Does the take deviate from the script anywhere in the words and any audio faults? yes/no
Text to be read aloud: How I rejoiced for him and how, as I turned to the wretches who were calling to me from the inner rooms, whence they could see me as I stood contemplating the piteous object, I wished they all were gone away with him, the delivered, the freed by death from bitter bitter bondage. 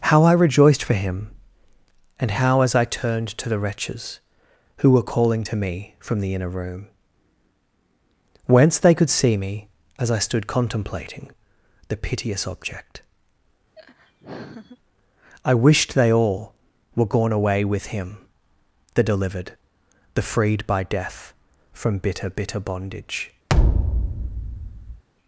yes